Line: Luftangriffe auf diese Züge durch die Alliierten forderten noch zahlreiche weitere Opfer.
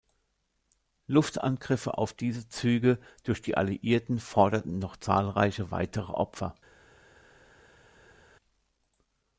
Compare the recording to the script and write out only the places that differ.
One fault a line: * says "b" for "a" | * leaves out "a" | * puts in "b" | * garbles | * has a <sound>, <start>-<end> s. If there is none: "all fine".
all fine